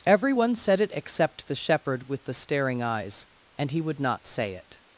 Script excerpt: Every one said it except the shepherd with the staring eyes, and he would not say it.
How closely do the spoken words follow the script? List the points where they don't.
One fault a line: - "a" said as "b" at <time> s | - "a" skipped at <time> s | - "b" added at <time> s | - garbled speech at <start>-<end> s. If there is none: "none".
none